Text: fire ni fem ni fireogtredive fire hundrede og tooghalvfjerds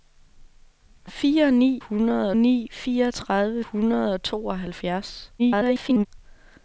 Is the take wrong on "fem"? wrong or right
wrong